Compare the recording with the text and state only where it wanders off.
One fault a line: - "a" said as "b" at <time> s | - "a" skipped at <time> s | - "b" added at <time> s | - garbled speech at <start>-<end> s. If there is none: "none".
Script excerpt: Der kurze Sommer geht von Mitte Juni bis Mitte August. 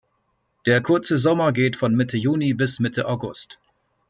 none